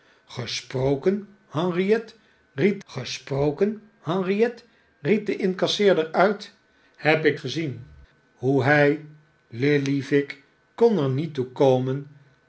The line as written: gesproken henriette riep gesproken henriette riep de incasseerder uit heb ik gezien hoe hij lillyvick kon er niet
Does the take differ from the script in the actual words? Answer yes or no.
no